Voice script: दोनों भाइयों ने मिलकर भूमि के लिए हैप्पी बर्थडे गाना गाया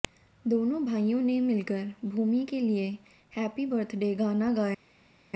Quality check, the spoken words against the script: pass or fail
pass